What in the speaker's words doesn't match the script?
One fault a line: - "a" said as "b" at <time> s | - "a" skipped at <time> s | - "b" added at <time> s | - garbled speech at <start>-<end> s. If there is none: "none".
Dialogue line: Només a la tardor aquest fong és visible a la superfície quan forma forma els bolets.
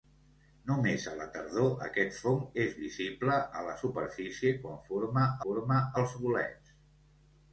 none